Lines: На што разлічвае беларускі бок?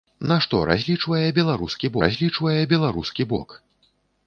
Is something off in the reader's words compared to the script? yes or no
yes